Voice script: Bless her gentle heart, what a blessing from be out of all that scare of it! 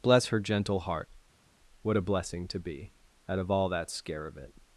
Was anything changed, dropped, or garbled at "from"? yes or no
yes